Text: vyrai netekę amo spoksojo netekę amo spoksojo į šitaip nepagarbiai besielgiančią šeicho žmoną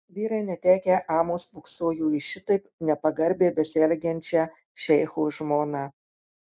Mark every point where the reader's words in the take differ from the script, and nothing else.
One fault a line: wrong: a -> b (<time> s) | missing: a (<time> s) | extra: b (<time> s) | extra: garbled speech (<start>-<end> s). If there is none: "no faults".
missing: netekę amo spoksojo (2.1 s)